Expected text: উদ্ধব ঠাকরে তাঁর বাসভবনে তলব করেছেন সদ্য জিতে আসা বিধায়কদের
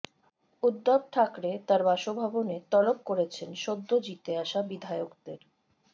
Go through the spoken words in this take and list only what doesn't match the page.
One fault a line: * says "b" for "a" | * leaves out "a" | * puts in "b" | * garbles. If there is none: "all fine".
all fine